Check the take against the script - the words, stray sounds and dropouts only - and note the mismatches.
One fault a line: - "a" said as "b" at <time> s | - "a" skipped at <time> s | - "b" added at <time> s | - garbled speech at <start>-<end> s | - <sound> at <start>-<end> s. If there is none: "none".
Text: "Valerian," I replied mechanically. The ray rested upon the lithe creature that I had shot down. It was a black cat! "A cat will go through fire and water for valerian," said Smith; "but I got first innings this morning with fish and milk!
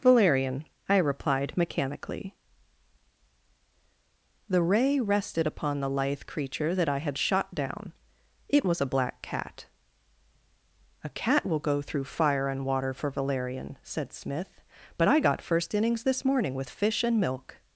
none